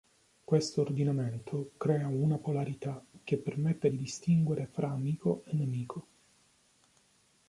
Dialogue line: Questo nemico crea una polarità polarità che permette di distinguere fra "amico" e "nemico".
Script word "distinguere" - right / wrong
right